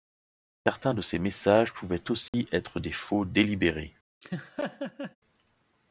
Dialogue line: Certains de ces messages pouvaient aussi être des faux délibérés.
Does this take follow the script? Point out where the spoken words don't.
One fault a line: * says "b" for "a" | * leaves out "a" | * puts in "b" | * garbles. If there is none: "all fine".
all fine